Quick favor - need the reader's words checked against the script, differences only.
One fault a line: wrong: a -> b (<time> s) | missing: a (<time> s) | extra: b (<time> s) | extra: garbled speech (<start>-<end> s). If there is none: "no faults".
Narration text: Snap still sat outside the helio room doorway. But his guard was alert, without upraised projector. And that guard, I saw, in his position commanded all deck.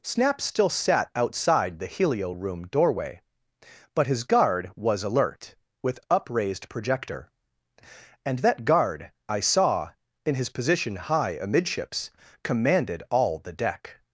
wrong: without -> with (5.8 s)
extra: high amidships (11.0 s)
extra: the (13.4 s)